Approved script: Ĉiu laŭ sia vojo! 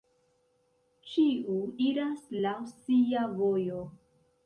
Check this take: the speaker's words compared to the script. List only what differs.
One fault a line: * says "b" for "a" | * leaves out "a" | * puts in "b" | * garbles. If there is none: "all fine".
* puts in "iras"